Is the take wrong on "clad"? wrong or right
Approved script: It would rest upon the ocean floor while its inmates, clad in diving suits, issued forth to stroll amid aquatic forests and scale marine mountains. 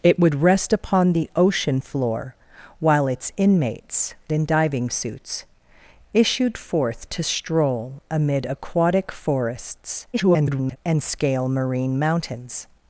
wrong